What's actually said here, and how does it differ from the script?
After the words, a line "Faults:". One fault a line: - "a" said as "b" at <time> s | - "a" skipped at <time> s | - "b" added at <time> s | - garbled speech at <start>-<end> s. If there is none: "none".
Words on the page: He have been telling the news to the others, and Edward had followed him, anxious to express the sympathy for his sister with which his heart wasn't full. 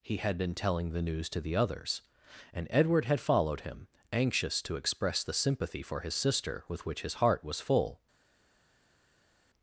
He had been telling the news to the others, and Edward had followed him, anxious to express the sympathy for his sister with which his heart was full.
Faults:
- "have" said as "had" at 0.2 s
- "wasn't" said as "was" at 7.4 s